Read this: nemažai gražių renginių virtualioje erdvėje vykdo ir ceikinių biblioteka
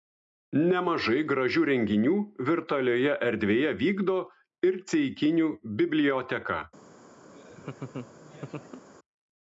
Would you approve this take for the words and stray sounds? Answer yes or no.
no